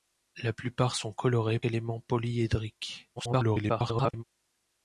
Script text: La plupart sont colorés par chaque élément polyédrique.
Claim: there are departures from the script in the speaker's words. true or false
true